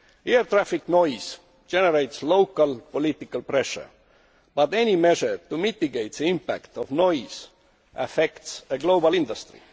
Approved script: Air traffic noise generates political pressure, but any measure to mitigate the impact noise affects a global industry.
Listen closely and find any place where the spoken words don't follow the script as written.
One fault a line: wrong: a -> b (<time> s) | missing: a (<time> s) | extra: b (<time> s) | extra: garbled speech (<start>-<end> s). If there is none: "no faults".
extra: local (2.2 s)
extra: of (6.8 s)